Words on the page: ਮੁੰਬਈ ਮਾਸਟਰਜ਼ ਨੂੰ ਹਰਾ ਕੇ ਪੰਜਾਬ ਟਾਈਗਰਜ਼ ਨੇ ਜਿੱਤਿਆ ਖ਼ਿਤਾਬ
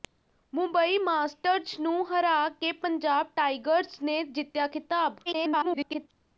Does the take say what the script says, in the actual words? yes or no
no